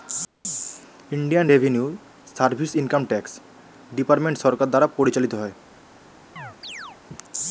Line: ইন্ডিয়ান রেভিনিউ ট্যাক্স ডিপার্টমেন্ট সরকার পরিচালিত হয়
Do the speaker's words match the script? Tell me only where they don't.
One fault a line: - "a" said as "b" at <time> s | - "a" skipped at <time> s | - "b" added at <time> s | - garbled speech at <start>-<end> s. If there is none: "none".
- "সার্ভিস ইনকাম" added at 2.4 s
- "দ্বারা" added at 4.7 s